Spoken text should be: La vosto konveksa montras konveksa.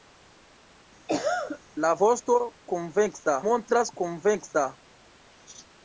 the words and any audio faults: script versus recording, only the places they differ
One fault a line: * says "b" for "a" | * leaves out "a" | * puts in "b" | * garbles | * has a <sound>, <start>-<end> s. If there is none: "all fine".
* has a cough, 1.1-1.6 s